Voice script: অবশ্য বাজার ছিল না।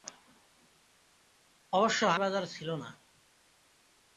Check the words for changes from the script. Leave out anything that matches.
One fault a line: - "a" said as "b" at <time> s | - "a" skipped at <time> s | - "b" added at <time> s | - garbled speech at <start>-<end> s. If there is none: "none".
none